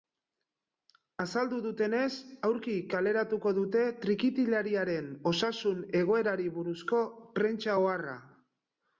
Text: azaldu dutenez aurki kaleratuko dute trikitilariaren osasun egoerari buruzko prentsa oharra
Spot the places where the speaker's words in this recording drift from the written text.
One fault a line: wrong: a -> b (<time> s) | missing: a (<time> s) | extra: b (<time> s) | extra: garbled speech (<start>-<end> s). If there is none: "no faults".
no faults